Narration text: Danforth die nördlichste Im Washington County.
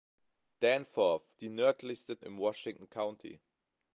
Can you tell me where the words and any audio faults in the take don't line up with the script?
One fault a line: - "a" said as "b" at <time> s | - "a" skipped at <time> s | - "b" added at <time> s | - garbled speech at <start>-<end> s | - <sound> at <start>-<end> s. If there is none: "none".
none